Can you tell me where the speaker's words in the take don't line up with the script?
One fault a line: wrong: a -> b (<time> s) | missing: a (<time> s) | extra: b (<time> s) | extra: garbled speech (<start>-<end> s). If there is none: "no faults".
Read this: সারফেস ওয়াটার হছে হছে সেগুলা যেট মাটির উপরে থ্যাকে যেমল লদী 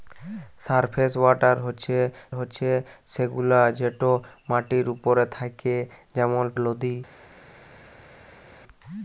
no faults